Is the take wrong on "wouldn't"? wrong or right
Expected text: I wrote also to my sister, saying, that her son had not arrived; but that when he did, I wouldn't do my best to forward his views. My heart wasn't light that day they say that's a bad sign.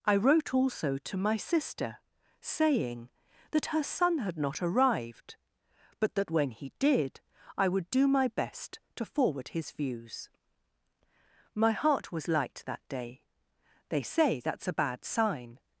wrong